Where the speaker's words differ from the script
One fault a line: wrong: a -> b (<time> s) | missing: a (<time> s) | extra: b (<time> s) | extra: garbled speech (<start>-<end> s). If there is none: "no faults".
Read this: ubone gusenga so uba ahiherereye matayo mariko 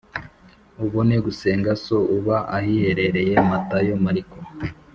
no faults